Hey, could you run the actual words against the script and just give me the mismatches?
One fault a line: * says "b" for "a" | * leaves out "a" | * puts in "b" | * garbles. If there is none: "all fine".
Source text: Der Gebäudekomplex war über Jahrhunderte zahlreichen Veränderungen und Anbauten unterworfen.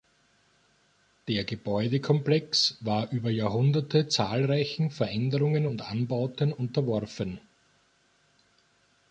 all fine